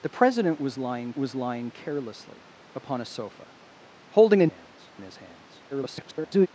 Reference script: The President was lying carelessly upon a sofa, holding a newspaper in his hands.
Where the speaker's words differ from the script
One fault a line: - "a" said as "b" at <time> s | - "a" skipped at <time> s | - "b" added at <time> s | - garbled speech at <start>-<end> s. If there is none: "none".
- "was lying" added at 1.2 s
- "newspaper" said as "hands" at 4.4 s
- garbled speech at 5.7-6.5 s